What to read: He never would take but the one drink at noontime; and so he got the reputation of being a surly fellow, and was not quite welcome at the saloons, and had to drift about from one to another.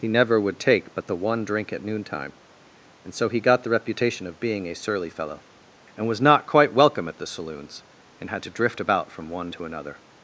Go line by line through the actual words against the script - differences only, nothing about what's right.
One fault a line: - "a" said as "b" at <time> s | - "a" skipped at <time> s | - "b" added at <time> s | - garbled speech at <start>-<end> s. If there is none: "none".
none